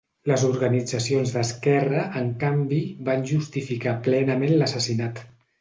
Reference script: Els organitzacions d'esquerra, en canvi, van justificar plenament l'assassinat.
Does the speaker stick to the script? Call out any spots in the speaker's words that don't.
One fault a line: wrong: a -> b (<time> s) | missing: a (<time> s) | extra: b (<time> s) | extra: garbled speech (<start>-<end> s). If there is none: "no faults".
wrong: Els -> Les (0.3 s)